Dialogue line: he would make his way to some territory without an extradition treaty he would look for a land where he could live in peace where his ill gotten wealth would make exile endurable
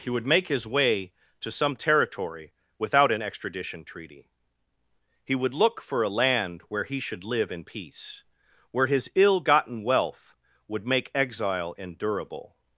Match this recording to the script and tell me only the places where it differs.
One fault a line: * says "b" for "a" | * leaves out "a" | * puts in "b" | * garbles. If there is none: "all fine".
* says "should" for "could"